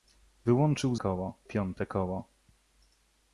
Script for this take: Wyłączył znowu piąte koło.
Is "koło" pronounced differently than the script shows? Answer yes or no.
no